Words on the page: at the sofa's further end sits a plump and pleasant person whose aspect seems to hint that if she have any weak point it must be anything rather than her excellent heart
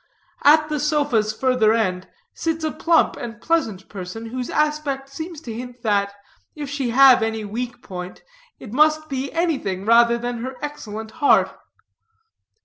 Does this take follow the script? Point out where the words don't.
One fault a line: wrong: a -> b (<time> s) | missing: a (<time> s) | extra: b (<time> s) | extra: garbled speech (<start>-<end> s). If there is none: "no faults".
no faults